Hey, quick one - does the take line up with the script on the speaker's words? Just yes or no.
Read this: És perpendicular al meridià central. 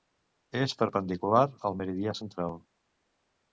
yes